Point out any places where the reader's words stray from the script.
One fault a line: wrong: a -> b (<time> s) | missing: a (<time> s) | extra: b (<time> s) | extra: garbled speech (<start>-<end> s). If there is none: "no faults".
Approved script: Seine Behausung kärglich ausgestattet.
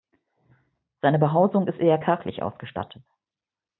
extra: ist eher (1.7 s)